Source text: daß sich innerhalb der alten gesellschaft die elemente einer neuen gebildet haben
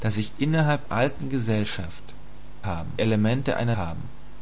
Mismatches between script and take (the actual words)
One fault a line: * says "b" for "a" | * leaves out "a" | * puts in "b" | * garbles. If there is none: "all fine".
* leaves out "der"
* says "haben" for "die"
* leaves out "neuen gebildet"